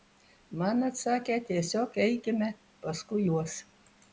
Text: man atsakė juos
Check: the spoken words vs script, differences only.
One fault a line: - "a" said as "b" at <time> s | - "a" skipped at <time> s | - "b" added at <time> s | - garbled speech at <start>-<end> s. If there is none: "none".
- "tiesiog eikime paskui" added at 1.5 s